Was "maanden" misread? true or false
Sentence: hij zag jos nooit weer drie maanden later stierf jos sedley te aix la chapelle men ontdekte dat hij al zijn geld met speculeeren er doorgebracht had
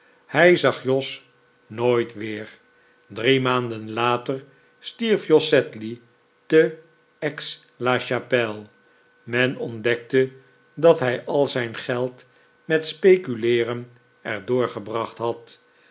false